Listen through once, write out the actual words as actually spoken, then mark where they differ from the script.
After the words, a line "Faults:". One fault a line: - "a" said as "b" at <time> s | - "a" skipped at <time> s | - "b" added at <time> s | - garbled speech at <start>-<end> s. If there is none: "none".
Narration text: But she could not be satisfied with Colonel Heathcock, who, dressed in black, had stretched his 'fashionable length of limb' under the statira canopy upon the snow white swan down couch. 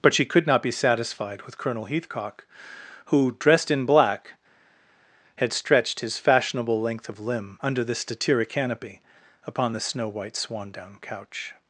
But she could not be satisfied with Colonel Heathcock, who, dressed in black, had stretched his 'fashionable length of limb' under the statira canopy upon the snow white swan down couch.
Faults:
none